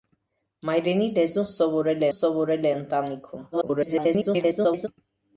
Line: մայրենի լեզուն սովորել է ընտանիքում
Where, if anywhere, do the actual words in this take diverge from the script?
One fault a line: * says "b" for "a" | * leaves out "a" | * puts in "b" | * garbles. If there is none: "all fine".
* puts in "սովորել"
* garbles